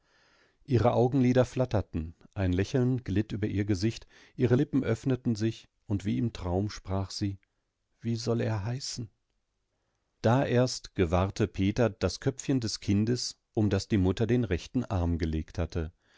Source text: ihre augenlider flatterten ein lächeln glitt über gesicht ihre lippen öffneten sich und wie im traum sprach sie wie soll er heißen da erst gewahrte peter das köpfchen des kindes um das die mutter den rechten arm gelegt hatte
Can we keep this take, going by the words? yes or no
no